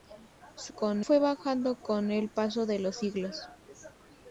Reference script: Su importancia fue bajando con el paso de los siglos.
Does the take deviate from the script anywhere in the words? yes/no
yes